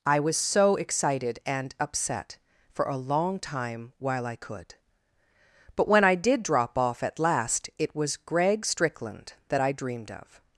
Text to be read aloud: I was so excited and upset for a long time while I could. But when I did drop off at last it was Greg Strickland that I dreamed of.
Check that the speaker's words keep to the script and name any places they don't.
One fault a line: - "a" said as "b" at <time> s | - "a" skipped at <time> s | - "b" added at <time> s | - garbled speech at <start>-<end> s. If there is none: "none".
none